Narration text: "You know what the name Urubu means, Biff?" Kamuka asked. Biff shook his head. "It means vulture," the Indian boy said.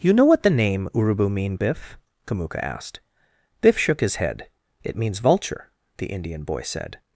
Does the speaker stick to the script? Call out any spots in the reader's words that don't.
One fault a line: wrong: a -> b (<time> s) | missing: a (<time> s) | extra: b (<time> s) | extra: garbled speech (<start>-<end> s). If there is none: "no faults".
wrong: means -> mean (1.3 s)